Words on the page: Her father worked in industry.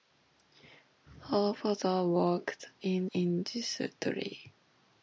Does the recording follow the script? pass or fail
pass